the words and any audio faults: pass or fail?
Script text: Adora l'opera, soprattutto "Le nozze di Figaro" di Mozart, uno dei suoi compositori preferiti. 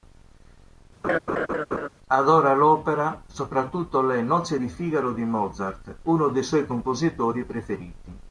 fail